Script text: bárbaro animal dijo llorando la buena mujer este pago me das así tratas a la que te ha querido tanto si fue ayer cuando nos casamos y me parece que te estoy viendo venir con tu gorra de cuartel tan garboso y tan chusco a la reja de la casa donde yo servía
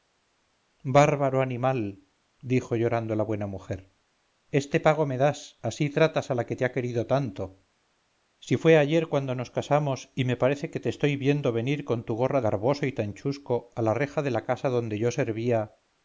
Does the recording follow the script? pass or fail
fail